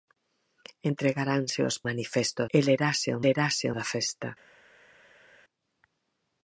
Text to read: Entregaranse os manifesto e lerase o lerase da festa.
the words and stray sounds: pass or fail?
pass